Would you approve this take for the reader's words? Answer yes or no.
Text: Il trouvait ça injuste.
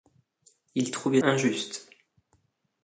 no